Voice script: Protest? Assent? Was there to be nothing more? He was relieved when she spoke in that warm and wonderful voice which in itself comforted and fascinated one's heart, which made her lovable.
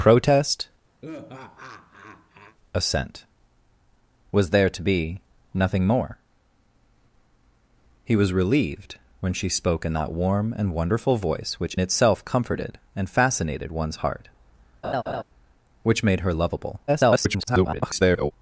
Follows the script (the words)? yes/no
no